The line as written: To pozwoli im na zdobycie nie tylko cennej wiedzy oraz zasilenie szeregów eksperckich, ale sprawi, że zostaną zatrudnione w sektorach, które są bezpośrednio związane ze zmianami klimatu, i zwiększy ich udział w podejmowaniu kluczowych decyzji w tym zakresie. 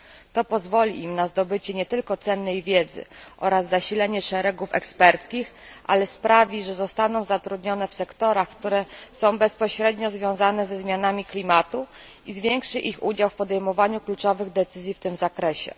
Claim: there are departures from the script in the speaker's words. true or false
false